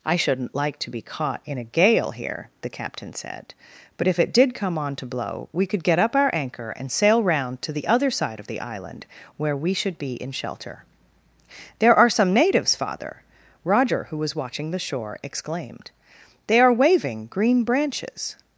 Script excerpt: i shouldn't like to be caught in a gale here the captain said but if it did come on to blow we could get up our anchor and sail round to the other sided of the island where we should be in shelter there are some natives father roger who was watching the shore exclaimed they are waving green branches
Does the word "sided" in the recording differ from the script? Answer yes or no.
yes